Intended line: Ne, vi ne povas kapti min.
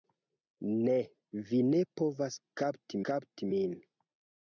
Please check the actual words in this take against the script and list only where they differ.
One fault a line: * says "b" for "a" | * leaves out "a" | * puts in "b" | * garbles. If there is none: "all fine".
* puts in "kapti"